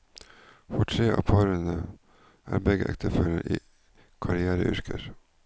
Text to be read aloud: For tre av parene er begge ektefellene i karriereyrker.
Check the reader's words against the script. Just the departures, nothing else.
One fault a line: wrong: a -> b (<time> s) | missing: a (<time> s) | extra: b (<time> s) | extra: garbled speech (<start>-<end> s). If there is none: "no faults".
no faults